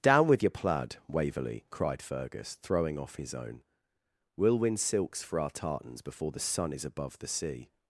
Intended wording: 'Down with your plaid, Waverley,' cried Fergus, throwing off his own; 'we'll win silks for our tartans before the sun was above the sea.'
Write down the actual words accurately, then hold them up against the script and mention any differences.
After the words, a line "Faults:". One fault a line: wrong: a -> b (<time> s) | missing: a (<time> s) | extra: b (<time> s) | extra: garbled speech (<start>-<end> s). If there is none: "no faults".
'Down with your plaid, Waverley,' cried Fergus, throwing off his own; 'we'll win silks for our tartans before the sun is above the sea.'
Faults:
wrong: was -> is (6.7 s)